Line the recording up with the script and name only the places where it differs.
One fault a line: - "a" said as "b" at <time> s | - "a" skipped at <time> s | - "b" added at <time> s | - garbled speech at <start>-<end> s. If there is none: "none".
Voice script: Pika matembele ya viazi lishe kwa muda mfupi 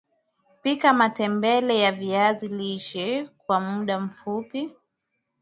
none